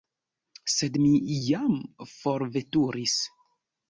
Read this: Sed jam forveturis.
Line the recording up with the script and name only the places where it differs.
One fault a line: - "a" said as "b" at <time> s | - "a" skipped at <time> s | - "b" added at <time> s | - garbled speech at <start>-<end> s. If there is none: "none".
- "mi" added at 1.0 s